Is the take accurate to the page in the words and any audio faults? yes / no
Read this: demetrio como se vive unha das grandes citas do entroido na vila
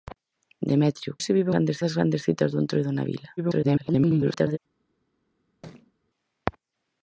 no